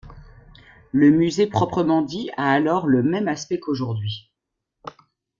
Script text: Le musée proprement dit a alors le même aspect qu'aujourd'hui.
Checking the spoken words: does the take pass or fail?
pass